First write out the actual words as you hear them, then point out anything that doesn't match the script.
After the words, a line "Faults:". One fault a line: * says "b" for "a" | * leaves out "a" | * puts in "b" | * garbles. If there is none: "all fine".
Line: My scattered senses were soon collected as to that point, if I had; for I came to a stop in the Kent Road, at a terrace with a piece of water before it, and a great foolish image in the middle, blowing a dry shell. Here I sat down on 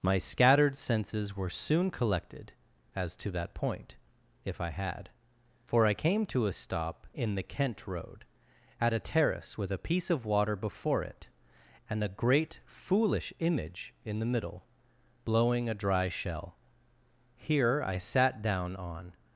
My scattered senses were soon collected as to that point, if I had; for I came to a stop in the Kent Road, at a terrace with a piece of water before it, and a great foolish image in the middle, blowing a dry shell. Here I sat down on
Faults:
all fine